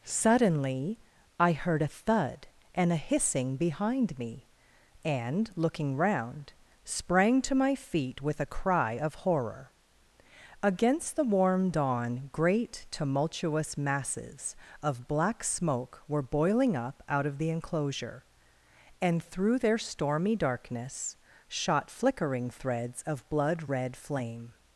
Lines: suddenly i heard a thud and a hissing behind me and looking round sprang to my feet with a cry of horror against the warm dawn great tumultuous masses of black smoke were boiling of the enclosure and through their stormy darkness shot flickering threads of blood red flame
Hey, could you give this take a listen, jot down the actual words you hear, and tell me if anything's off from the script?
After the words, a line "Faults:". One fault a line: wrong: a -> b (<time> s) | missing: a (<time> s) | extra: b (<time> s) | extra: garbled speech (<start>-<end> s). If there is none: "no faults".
suddenly i heard a thud and a hissing behind me and looking round sprang to my feet with a cry of horror against the warm dawn great tumultuous masses of black smoke were boiling up out of the enclosure and through their stormy darkness shot flickering threads of blood red flame
Faults:
extra: up out (16.8 s)